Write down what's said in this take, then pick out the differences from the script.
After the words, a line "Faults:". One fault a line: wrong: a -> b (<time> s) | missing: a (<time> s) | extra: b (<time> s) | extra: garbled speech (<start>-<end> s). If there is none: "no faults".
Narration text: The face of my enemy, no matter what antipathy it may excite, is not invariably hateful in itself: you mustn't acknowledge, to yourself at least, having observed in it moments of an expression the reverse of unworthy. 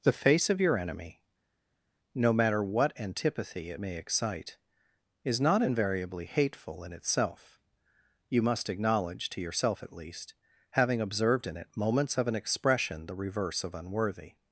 The face of your enemy, no matter what antipathy it may excite, is not invariably hateful in itself: you must acknowledge, to yourself at least, having observed in it moments of an expression the reverse of unworthy.
Faults:
wrong: my -> your (0.6 s)
wrong: mustn't -> must (8.4 s)